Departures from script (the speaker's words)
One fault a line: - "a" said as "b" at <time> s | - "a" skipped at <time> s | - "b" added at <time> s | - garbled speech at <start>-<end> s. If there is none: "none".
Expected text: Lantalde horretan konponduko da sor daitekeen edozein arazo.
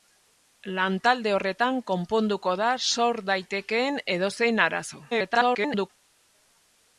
- garbled speech at 5.1-5.9 s